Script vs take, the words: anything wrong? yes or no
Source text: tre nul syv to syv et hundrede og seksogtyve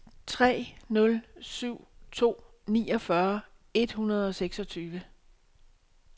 yes